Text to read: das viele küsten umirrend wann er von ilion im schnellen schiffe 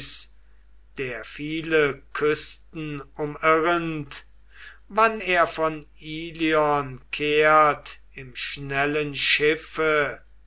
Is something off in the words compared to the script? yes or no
yes